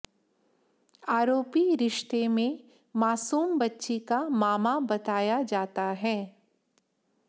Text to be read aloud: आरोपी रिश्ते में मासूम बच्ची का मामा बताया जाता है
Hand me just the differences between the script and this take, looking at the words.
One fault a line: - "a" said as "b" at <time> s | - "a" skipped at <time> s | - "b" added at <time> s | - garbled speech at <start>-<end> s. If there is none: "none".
none